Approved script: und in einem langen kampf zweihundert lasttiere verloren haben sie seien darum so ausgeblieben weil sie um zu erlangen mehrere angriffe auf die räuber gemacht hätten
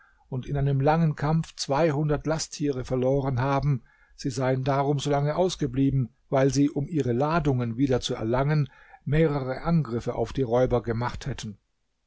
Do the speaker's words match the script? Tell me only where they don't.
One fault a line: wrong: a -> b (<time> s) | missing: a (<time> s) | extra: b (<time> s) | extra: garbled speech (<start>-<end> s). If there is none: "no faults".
extra: lange (5.1 s)
extra: ihre ladungen wieder (6.9 s)